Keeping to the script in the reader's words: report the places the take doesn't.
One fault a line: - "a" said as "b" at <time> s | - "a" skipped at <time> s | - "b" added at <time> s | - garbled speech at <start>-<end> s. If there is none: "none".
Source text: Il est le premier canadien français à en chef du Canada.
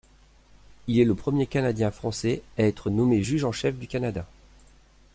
- "être nommé juge" added at 2.6 s